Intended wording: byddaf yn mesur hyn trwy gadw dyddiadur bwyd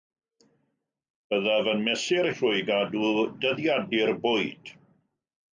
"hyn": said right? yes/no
no